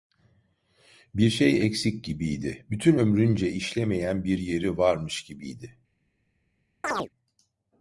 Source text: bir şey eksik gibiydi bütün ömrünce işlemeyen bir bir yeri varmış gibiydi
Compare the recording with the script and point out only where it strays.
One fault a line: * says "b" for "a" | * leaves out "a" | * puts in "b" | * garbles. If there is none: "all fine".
* leaves out "bir"